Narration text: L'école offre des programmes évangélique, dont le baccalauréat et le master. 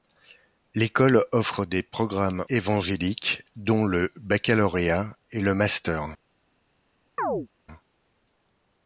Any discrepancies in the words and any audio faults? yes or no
yes